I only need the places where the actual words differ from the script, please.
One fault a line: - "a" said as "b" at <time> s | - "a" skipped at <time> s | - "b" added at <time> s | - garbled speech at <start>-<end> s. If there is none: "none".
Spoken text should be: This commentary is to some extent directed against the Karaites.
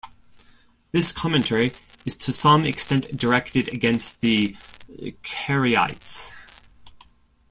none